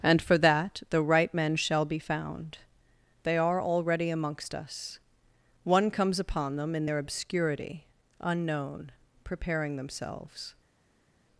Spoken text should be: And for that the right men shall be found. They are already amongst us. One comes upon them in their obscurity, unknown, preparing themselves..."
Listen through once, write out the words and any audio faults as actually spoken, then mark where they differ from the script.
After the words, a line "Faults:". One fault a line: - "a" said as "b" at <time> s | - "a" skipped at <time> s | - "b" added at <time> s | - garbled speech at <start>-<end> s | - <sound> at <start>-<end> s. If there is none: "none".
And for that the right men shall be found. They are already amongst us. One comes upon them in their obscurity, unknown, preparing themselves..."
Faults:
none